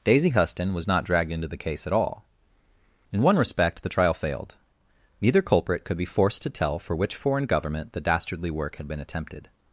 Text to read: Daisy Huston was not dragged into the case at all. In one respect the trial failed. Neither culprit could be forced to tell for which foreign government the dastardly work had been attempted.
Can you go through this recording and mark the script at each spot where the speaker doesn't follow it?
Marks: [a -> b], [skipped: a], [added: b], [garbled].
Daisy Huston was not dragged into the case at all. In one respect the trial failed. Neither culprit could be forced to tell for which foreign government the dastardly work had been attempted.